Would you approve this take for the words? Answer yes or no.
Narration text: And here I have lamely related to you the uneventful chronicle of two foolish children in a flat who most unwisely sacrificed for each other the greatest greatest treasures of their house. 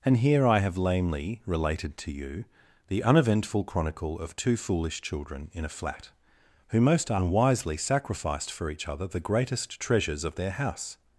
no